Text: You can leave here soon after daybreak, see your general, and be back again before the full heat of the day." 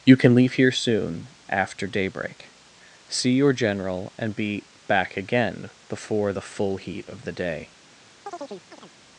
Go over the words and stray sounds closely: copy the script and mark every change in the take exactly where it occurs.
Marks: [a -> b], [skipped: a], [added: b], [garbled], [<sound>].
You can leave here soon after daybreak, see your general, and be back again before the full heat of the day." [chirp]